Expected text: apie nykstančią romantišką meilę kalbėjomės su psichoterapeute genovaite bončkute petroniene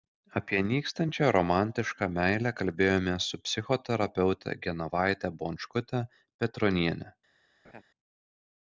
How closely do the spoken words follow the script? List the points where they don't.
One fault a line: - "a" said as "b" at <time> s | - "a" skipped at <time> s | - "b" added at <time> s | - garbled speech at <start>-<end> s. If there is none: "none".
none